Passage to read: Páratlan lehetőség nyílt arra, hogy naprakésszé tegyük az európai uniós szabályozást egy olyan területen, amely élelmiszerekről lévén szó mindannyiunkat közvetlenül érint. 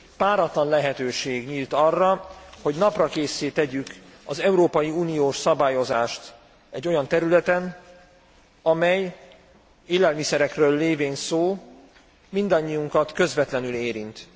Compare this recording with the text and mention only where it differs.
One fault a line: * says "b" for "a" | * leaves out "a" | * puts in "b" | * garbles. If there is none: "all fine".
all fine